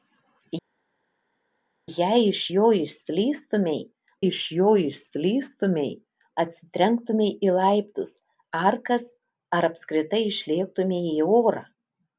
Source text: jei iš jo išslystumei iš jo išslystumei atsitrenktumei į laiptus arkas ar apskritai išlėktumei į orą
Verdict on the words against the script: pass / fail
pass